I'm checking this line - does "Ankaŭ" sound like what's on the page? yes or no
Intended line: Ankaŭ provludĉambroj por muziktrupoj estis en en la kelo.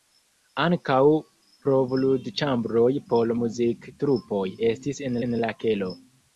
yes